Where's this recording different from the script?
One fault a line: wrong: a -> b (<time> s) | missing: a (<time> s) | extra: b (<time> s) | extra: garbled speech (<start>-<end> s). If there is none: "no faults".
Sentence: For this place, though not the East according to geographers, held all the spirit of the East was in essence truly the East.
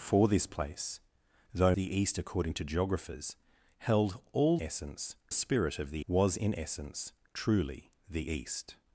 missing: not (1.7 s)
wrong: the -> essence (4.6 s)
missing: East (6.0 s)